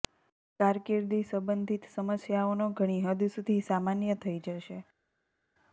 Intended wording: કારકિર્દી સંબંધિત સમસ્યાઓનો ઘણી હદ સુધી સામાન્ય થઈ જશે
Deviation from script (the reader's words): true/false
false